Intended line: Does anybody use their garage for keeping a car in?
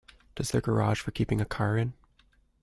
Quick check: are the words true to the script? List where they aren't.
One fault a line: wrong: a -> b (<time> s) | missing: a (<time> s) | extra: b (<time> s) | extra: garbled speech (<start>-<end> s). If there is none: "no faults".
missing: anybody use (0.5 s)